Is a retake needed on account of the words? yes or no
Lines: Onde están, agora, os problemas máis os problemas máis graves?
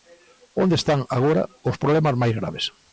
yes